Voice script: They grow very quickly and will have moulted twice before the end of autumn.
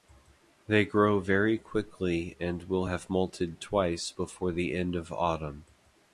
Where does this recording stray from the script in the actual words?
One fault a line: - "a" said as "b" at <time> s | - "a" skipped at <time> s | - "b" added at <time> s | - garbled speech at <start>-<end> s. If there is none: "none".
none